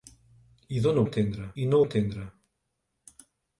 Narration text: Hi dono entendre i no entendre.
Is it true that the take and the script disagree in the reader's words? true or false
false